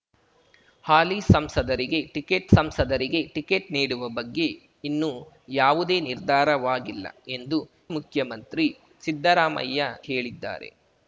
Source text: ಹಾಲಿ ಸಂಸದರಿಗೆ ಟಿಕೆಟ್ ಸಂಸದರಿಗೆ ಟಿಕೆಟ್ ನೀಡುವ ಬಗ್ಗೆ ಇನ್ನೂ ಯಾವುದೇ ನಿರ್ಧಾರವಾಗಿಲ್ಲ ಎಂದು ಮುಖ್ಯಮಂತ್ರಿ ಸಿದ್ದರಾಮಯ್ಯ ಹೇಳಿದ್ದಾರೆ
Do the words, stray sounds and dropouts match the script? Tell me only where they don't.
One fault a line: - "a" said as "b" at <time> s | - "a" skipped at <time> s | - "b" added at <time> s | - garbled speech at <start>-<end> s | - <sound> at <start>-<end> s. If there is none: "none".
none